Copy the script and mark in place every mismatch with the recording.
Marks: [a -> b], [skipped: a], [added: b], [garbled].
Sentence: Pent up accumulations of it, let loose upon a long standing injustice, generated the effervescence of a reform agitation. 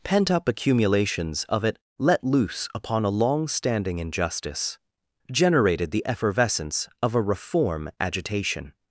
Pent up accumulations of it, let loose upon a long standing injustice, generated the effervescence of a reform agitation.